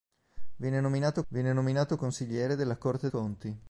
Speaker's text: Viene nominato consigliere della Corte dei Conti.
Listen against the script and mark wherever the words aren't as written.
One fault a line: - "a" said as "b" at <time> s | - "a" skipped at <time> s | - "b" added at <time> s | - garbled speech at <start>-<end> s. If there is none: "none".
- "viene nominato" added at 1.3 s
- "dei" skipped at 3.1 s